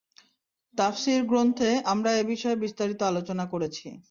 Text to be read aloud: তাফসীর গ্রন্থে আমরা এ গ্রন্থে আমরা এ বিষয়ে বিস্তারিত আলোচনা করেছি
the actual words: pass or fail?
fail